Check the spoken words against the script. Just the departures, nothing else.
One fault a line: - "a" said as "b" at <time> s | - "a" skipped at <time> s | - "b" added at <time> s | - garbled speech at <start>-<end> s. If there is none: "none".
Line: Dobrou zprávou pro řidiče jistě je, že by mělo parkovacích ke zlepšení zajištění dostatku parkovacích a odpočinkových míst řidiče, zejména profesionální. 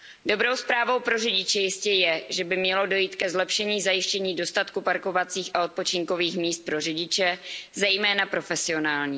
- "parkovacích" said as "dojít" at 2.9 s
- "pro" added at 6.7 s